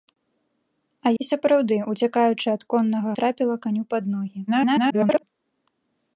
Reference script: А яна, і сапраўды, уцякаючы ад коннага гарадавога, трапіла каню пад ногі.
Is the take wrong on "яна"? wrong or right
wrong